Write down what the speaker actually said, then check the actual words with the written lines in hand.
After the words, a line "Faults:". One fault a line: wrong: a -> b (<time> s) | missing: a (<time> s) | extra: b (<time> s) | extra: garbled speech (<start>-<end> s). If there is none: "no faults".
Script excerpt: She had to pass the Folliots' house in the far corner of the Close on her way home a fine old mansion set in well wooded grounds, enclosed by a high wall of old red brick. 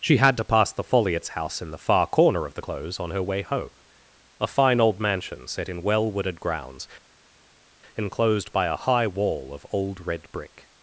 She had to pass the Folliots' house in the far corner of the Close on her way home a fine old mansion set in well wooded grounds, enclosed by a high wall of old red brick.
Faults:
no faults